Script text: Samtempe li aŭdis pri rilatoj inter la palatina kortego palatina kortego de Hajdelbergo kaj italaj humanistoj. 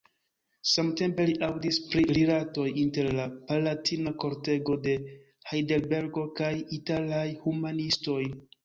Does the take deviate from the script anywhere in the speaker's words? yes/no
yes